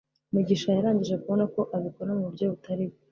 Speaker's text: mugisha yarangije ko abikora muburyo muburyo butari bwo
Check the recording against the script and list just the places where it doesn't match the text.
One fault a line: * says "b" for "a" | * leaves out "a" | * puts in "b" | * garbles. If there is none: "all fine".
* puts in "kubona"
* leaves out "muburyo"